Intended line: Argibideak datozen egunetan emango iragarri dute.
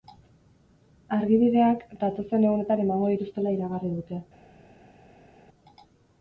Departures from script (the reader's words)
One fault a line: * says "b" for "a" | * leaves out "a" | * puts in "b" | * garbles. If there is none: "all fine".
* puts in "dituztela"